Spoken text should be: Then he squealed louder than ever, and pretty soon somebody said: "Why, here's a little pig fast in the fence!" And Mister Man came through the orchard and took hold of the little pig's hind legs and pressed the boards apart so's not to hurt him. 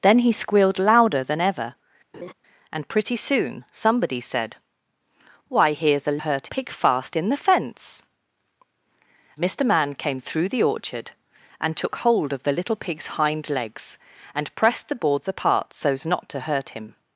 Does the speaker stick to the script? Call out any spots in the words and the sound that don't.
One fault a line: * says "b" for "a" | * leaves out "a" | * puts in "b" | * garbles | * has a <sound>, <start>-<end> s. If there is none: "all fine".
* has a laugh, 2.1-2.3 s
* says "hurt" for "little"
* leaves out "And"